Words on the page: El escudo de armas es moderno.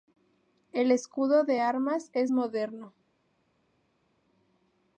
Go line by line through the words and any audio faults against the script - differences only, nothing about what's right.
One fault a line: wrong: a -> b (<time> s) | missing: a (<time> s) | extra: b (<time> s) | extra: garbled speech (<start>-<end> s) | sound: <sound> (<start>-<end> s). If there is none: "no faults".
no faults